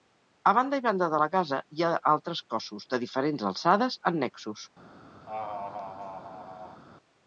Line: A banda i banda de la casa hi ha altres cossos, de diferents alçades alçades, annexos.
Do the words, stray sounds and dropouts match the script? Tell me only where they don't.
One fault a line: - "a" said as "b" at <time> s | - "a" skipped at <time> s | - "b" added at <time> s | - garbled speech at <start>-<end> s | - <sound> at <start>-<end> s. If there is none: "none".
- "alçades" skipped at 4.0 s
- laugh at 5.3-6.8 s